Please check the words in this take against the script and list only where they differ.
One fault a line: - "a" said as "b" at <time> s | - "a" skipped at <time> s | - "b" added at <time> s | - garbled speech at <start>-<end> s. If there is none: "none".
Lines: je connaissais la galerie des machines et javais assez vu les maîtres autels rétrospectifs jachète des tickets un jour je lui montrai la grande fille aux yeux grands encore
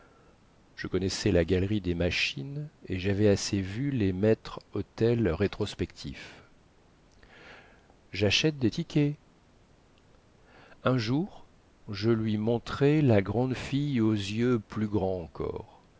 - "plus" added at 14.6 s